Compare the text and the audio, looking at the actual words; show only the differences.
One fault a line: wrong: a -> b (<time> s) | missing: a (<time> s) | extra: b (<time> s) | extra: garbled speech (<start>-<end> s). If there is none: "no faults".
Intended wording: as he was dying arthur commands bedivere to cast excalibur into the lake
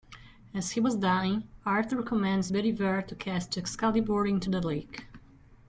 no faults